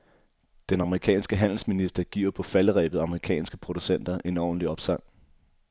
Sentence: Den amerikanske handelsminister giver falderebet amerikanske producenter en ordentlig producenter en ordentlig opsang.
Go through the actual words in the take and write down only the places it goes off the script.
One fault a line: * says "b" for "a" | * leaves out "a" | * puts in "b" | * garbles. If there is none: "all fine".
* puts in "på"
* leaves out "producenter en ordentlig"